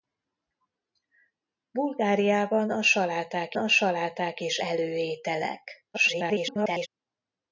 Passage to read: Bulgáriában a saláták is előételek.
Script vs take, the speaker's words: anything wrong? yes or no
yes